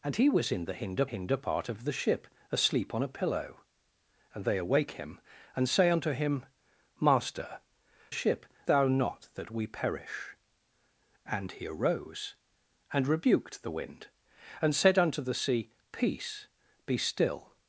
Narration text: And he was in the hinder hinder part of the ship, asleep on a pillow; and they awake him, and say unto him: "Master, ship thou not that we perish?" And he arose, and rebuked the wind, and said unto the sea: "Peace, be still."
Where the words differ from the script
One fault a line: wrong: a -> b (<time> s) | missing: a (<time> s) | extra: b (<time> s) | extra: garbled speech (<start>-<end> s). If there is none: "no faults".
no faults